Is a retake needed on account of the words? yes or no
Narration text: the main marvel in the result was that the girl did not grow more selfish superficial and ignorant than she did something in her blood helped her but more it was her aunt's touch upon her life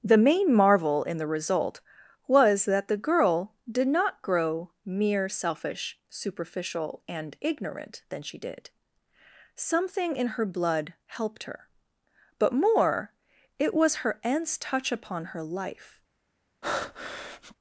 yes